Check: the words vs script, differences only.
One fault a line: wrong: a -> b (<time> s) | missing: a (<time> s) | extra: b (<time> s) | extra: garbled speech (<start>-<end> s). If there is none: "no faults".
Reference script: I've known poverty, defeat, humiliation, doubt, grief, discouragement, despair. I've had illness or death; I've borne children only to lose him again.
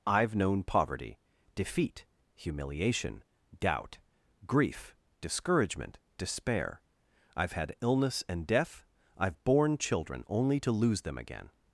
wrong: or -> and (8.3 s)
wrong: him -> them (11.0 s)